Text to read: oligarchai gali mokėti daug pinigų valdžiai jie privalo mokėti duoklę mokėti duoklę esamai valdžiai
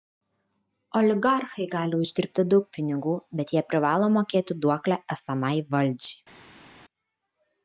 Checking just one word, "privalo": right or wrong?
right